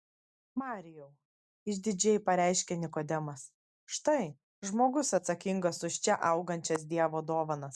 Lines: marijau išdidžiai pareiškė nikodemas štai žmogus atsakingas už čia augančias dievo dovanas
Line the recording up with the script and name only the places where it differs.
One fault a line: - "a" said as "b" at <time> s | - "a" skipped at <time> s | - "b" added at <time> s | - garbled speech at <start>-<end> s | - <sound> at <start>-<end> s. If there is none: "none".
none